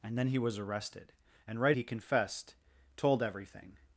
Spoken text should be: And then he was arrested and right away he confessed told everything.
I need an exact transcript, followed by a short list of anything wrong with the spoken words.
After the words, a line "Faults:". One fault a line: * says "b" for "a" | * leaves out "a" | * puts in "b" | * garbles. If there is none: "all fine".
And then he was arrested and right he confessed told everything.
Faults:
* leaves out "away"